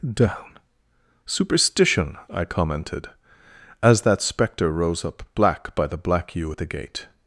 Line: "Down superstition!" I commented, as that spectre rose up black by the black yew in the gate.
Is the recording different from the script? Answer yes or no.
yes